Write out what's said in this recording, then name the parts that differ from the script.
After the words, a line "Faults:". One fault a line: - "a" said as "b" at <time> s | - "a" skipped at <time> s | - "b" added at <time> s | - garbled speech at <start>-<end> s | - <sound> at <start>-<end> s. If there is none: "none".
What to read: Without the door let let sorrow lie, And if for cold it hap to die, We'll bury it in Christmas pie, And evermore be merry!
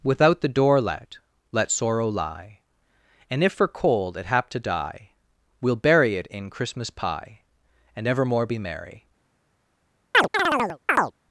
Without the door let let sorrow lie, And if for cold it hap to die, We'll bury it in Christmas pie, And evermore be merry!
Faults:
- chirp at 10.1-11.1 s